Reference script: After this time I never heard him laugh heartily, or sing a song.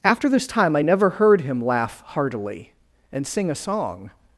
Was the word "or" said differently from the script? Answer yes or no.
yes